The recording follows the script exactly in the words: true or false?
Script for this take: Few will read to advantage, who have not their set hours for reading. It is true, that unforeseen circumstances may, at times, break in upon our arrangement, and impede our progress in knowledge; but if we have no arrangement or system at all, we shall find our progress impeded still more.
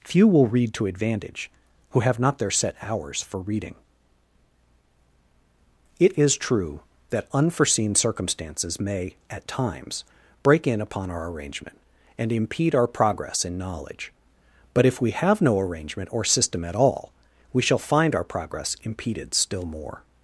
true